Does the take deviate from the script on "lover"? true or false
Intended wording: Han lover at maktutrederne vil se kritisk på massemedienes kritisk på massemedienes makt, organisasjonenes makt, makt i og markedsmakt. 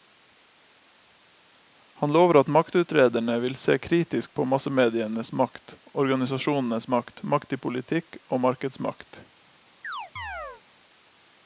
false